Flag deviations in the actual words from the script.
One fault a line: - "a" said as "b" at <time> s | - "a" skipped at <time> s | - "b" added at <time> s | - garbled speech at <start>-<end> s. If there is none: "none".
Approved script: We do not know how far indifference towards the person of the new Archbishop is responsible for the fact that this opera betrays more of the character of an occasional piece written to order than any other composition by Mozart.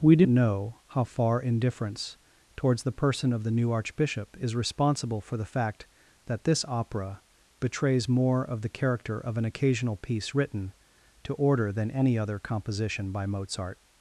- "not" skipped at 0.2 s